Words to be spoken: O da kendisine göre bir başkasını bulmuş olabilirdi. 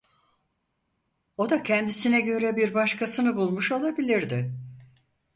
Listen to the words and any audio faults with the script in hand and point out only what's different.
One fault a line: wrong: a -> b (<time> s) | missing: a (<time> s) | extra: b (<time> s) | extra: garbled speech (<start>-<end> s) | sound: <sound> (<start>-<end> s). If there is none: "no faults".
no faults